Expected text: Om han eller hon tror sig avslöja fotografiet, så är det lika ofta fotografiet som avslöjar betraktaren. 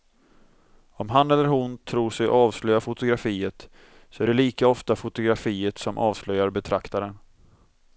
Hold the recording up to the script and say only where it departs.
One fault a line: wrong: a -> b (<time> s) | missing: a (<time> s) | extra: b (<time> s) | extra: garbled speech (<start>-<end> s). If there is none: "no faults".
no faults